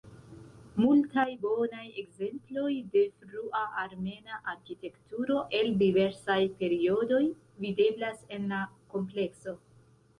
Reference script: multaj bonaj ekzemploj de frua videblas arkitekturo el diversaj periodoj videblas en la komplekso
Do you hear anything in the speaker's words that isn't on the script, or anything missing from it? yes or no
yes